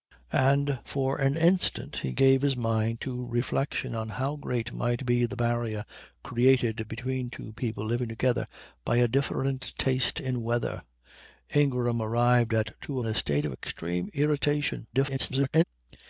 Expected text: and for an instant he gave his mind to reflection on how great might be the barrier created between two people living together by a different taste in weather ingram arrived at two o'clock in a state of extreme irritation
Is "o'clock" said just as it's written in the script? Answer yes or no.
no